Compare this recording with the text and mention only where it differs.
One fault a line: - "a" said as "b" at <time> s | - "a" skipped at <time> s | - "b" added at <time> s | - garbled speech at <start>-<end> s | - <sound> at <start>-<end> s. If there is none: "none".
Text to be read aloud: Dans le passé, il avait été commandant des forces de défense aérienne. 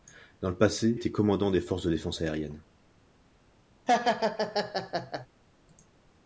- "il avait" skipped at 0.9 s
- laugh at 3.9-5.3 s